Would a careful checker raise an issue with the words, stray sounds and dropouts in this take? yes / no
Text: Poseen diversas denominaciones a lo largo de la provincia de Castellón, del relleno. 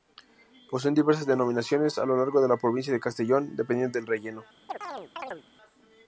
yes